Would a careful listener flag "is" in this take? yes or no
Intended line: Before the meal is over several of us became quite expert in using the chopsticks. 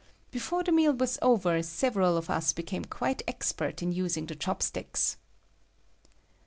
yes